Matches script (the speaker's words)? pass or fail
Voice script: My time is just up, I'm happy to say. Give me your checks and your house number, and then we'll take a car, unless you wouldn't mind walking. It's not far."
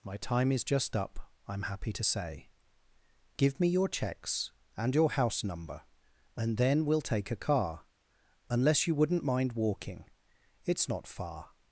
pass